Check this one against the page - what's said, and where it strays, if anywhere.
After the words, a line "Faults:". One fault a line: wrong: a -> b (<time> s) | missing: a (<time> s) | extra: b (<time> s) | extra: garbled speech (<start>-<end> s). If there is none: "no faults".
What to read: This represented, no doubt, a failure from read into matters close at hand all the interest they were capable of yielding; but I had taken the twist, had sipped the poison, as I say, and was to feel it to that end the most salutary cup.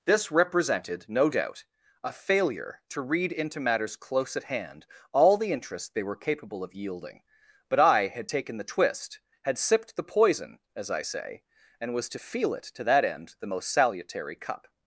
This represented, no doubt, a failure to read into matters close at hand all the interest they were capable of yielding; but I had taken the twist, had sipped the poison, as I say, and was to feel it to that end the most salutary cup.
Faults:
wrong: from -> to (2.9 s)